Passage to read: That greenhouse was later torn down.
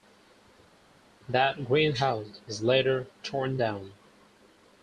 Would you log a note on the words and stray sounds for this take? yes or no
no